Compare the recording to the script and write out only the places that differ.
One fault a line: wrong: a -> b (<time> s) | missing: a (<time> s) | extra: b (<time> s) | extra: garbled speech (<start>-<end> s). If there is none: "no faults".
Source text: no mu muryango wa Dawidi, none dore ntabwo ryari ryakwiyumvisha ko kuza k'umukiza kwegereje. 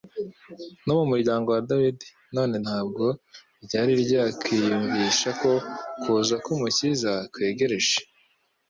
missing: dore (2.5 s)